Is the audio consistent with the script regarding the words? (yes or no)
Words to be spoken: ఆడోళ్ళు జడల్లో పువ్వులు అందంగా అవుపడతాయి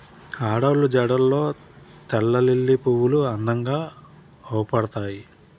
no